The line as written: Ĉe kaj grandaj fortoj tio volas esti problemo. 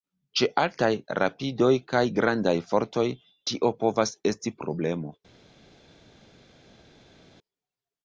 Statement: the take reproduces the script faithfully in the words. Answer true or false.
false